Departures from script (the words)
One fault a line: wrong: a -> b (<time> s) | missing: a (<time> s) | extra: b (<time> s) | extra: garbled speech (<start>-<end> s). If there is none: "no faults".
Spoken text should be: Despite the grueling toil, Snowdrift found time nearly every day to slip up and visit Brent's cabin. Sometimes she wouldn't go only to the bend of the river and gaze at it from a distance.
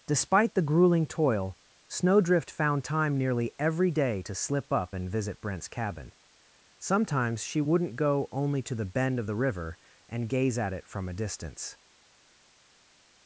no faults